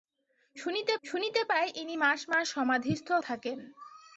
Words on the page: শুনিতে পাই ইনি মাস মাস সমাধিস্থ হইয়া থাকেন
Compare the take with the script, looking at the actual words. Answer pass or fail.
fail